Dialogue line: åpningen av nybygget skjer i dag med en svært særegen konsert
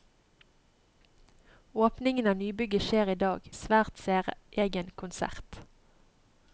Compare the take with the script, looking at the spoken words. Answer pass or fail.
fail